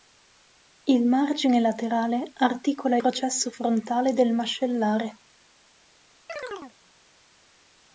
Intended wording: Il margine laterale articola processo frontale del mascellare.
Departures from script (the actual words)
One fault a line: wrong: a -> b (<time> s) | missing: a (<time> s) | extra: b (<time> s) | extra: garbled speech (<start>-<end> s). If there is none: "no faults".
no faults